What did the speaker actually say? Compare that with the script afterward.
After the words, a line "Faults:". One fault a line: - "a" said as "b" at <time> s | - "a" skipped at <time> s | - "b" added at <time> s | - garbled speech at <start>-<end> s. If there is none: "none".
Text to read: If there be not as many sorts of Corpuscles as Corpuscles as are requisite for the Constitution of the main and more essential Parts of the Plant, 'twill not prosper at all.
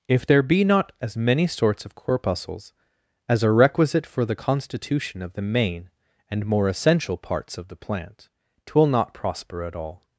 If there be not as many sorts of Corpuscles as are requisite for the Constitution of the main and more essential Parts of the Plant, 'twill not prosper at all.
Faults:
- "Corpuscles as" skipped at 3.4 s